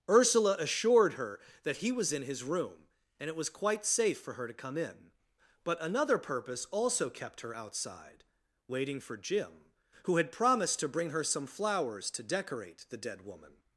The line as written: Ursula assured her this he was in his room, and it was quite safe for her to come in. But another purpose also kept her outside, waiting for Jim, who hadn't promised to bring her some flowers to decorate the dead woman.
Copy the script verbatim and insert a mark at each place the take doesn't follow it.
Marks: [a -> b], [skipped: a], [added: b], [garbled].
Ursula assured her [this -> that] he was in his room, and it was quite safe for her to come in. But another purpose also kept her outside, waiting for Jim, who [hadn't -> had] promised to bring her some flowers to decorate the dead woman.